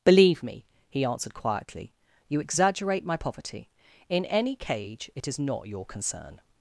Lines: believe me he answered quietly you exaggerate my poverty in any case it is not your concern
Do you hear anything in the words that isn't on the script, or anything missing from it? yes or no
yes